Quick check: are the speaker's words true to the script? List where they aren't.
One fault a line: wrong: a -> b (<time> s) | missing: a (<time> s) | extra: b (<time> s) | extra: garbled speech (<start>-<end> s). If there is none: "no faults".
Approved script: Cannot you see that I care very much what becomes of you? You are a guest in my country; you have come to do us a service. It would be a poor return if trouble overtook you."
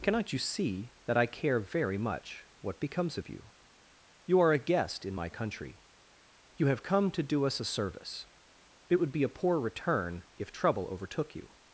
no faults